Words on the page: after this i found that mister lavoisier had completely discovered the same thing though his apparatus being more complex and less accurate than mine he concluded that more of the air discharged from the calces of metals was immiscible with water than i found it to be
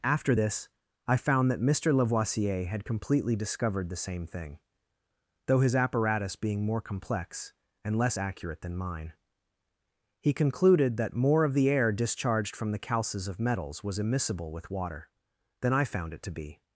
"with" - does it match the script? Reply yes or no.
yes